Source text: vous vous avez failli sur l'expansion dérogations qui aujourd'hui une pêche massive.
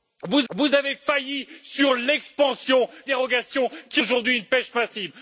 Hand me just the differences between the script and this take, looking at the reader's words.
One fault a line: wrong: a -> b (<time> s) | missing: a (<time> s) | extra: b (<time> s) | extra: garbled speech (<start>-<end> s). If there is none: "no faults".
no faults